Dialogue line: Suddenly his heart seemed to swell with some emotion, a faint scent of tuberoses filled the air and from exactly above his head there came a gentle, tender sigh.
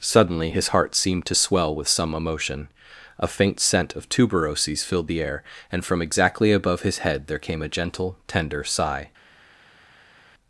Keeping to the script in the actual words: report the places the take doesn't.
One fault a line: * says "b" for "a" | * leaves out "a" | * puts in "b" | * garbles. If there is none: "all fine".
all fine